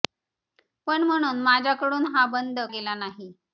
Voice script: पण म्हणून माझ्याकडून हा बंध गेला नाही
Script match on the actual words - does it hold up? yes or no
yes